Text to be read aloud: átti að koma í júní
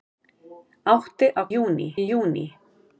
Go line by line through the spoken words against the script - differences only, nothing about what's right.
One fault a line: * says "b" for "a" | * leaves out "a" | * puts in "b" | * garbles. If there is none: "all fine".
* says "júní" for "koma"